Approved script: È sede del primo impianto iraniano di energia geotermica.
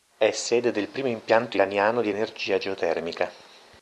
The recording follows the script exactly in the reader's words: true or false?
true